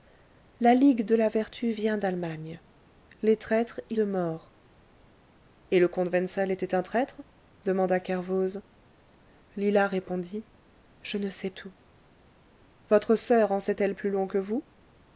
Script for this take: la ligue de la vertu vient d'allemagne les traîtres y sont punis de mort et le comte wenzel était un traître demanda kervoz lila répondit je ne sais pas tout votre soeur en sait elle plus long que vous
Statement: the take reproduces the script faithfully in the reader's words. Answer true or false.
false